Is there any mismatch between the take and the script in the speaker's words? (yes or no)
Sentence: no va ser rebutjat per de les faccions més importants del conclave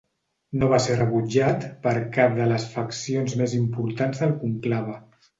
yes